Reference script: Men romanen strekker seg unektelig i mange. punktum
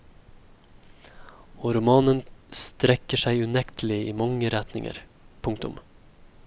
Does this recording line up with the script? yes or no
no